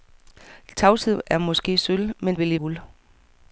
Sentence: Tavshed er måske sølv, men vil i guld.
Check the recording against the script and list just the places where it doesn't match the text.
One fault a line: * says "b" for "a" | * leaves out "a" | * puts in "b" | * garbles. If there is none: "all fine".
all fine